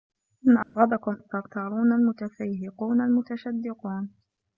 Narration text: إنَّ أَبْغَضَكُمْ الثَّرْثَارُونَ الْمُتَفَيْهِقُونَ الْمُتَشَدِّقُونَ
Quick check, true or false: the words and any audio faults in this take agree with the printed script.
false